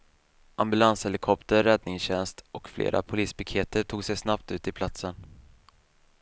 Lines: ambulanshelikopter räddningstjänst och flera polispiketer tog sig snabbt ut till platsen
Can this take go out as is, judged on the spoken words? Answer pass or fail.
pass